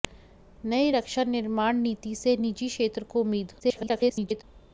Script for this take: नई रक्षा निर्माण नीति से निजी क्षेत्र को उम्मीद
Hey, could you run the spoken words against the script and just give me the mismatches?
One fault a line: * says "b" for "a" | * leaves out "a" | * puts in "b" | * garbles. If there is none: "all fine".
* garbles